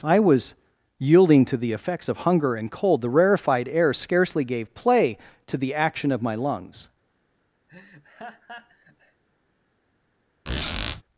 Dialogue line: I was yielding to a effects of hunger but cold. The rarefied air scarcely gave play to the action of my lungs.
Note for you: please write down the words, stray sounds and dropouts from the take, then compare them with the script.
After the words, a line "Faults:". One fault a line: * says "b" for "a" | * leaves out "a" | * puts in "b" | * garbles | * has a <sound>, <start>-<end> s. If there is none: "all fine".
I was yielding to the effects of hunger and cold. The rarefied air scarcely gave play to the action of my lungs.
Faults:
* says "the" for "a"
* says "and" for "but"
* has a laugh, 7.7-9.2 s
* has a squeak, 10.5-11.0 s